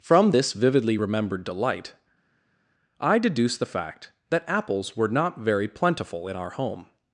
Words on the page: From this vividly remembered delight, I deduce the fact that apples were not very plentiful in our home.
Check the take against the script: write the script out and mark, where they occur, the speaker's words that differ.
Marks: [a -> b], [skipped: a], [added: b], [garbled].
From this vividly remembered delight, I deduce the fact that apples were not very plentiful in our home.